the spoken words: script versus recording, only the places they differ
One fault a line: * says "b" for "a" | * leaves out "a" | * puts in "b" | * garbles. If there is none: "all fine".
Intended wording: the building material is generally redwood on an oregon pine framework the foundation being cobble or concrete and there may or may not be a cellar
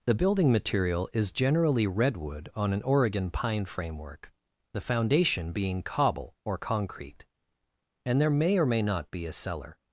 all fine